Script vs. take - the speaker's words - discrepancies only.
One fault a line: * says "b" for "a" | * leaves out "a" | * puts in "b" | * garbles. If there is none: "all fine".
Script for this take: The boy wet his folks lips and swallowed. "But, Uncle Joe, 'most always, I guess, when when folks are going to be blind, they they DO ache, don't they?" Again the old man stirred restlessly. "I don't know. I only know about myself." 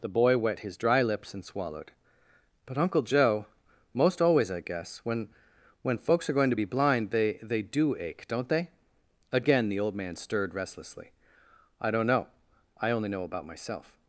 * says "dry" for "folks"